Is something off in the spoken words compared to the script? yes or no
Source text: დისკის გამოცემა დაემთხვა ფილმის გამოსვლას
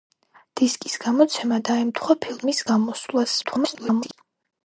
yes